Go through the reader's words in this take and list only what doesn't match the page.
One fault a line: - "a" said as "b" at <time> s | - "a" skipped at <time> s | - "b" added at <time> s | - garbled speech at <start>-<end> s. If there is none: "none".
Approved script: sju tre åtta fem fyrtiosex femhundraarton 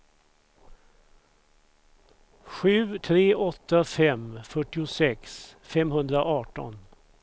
none